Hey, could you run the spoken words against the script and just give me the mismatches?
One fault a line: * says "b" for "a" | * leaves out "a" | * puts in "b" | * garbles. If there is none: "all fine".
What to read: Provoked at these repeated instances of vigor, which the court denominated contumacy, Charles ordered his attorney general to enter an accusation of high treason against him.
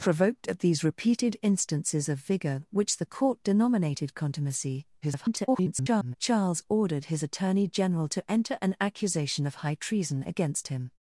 * garbles